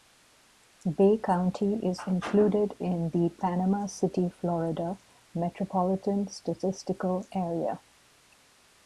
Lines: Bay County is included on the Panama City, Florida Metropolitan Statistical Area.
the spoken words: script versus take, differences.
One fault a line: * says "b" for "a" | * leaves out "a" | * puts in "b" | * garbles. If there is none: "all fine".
* says "in" for "on"